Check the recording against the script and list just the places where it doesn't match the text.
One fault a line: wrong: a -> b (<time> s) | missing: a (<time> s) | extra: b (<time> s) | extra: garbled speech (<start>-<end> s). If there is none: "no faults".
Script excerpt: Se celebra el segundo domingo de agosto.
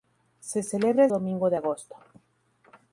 missing: segundo (1.1 s)